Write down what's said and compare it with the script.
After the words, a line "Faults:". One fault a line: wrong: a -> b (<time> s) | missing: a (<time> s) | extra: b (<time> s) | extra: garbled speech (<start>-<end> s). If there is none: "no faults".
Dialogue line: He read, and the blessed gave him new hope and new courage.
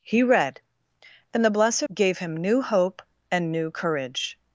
He read, and the blessed gave him new hope and new courage.
Faults:
no faults